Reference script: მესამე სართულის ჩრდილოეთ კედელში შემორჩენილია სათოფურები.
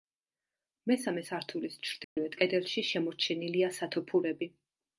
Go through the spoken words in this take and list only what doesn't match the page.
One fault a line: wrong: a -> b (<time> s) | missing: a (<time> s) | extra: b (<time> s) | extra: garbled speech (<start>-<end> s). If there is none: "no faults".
no faults